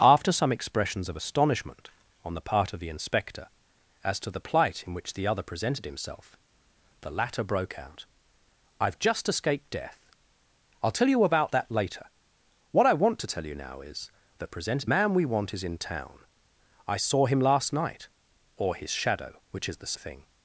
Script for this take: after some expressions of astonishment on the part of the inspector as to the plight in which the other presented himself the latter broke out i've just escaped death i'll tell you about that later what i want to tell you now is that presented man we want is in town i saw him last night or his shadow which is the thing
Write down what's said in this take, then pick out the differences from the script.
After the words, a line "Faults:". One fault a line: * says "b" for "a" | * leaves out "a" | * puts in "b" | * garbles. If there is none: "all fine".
after some expressions of astonishment on the part of the inspector as to the plight in which the other presented himself the latter broke out i've just escaped death i'll tell you about that later what i want to tell you now is that presented man we want is in town i saw him last night or his shadow which is the thing
Faults:
all fine